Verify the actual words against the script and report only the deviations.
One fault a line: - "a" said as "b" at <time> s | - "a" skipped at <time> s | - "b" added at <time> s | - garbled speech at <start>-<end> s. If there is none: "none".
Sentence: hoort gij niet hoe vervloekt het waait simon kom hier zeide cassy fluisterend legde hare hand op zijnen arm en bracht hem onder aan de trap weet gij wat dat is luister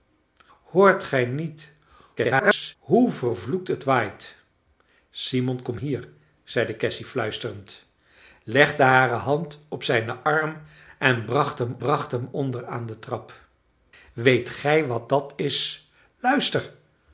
- garbled speech at 2.2-2.8 s
- "bracht hem" added at 11.8 s